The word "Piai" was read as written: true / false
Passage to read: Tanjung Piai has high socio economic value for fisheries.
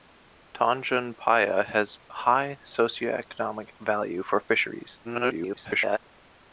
true